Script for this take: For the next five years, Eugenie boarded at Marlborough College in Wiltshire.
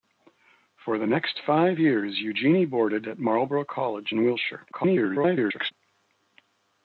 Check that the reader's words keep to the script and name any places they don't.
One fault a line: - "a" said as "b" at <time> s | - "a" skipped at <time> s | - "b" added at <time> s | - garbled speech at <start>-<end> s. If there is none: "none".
- garbled speech at 4.7-5.7 s